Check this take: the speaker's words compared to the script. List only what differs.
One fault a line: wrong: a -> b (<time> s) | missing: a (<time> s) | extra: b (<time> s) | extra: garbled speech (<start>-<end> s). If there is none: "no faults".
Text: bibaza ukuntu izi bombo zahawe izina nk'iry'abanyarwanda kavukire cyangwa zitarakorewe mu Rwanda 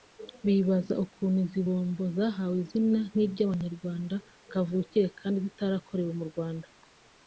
wrong: cyangwa -> kandi (5.2 s)